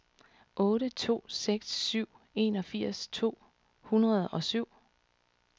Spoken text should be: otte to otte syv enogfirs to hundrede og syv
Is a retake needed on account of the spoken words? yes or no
yes